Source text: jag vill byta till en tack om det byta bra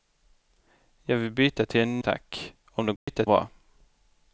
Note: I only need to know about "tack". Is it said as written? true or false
true